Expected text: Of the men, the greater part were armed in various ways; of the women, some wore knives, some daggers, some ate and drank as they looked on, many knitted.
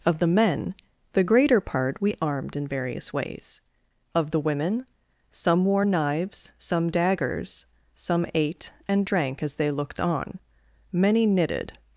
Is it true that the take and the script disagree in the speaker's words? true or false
true